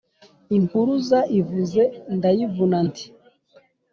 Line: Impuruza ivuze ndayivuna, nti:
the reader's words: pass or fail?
pass